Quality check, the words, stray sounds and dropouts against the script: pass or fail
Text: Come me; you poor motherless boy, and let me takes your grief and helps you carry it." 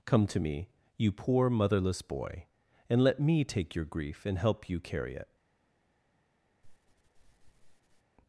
fail